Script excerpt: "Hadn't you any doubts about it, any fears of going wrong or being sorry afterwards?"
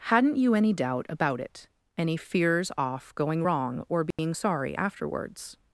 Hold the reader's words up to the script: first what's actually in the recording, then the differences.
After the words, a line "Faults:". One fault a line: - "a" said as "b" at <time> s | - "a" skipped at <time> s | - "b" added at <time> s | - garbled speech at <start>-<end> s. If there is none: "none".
"Hadn't you any doubt about it, any fears off going wrong or being sorry afterwards?"
Faults:
- "doubts" said as "doubt" at 0.7 s
- "of" said as "off" at 2.8 s